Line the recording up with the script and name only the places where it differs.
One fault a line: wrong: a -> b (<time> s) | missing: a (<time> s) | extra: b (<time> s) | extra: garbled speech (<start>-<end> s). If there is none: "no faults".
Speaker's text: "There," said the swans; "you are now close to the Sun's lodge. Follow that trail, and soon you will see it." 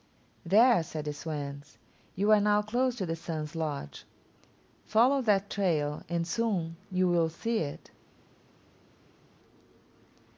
no faults